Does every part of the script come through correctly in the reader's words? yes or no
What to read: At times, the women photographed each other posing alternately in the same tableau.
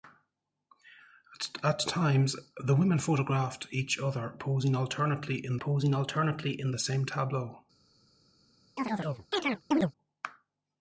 no